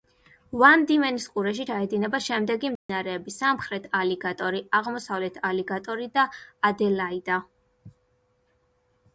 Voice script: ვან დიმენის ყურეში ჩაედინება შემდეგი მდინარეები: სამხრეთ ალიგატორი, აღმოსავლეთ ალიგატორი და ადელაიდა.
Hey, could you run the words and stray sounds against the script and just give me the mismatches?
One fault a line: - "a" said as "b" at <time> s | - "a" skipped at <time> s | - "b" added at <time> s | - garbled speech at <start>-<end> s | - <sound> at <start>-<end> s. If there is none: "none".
- dropout at 2.8-2.9 s